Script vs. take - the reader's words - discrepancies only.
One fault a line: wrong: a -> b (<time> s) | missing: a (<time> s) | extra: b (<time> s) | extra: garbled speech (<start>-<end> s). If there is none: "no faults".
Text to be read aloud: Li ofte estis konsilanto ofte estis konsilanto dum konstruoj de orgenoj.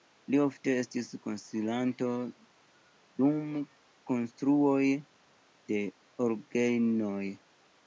missing: ofte estis konsilanto (2.1 s)